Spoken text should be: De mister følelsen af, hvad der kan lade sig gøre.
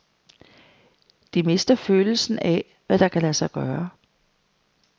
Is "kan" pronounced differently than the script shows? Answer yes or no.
no